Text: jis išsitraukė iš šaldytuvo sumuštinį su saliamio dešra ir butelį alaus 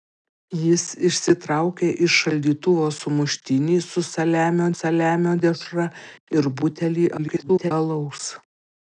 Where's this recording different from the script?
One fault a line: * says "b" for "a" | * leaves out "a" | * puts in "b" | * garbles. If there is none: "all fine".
* puts in "saliamio"
* garbles